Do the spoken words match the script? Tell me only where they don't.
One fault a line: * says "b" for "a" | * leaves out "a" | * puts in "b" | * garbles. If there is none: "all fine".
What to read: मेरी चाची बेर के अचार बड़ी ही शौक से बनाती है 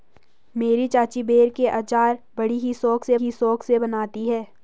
* puts in "ही शौक से"